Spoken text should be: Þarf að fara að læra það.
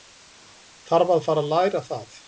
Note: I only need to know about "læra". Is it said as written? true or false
true